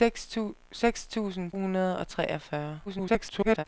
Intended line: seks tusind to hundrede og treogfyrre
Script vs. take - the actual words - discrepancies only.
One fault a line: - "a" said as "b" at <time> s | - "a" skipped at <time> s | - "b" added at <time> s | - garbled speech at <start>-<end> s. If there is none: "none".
- "to" skipped at 1.5 s
- garbled speech at 2.9-3.6 s